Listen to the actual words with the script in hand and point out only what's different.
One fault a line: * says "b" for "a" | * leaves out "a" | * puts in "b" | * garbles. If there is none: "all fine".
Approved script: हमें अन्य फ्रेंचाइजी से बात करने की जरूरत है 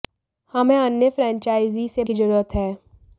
* leaves out "बात करने"